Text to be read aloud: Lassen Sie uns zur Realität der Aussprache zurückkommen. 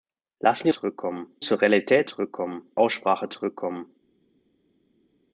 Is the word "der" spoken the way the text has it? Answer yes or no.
no